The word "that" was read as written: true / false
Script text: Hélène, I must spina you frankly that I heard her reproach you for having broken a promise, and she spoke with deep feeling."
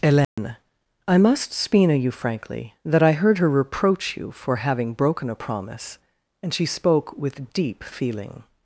true